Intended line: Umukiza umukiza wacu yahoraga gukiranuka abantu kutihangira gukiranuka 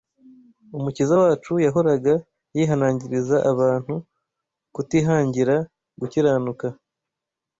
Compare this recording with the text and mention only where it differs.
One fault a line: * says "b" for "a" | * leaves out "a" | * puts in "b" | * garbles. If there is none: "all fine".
* leaves out "umukiza"
* says "yihanangiriza" for "gukiranuka"